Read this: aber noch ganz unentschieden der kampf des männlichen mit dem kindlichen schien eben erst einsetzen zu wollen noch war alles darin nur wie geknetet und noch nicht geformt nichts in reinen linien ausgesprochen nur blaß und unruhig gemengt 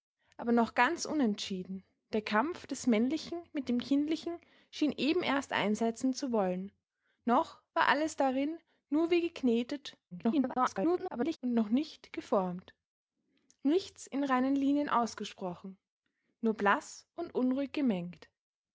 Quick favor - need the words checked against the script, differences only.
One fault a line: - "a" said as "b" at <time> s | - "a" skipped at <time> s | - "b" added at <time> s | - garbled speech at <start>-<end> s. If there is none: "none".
- garbled speech at 10.1-11.4 s